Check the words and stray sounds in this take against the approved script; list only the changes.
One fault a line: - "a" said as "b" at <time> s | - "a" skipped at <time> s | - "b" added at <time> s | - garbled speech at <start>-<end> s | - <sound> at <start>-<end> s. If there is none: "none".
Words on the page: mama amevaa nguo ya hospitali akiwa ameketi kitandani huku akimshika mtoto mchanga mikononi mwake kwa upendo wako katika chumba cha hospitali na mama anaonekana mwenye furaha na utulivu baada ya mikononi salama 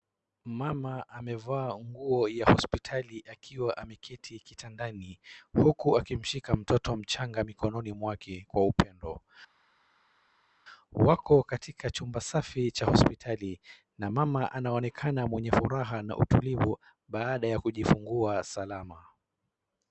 - "safi" added at 12.2 s
- "mikononi" said as "kujifungua" at 17.6 s